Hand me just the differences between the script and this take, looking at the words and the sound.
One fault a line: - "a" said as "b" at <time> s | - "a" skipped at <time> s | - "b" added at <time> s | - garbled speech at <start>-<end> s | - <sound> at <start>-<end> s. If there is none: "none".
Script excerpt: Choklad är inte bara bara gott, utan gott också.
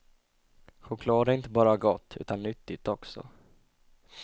- "bara" skipped at 1.8 s
- "gott" said as "nyttigt" at 2.4 s